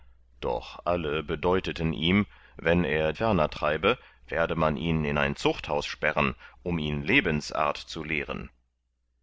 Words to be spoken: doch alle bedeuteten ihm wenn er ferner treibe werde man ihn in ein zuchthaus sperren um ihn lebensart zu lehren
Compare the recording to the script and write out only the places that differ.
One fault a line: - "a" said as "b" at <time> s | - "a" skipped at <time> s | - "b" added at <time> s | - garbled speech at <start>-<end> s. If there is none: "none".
none